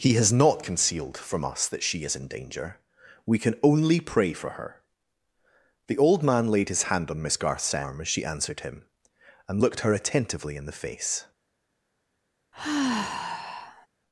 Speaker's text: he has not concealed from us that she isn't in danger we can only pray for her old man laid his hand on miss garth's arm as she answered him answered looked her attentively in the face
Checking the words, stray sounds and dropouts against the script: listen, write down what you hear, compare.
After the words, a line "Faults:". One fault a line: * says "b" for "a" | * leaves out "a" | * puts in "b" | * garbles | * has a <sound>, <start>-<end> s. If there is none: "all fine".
he has not concealed from us that she is in danger we can only pray for her the old man laid his hand on miss garth's arm as she answered him and looked her attentively in the face
Faults:
* says "is" for "isn't"
* puts in "the"
* says "and" for "answered"
* has a sigh, 12.5-13.9 s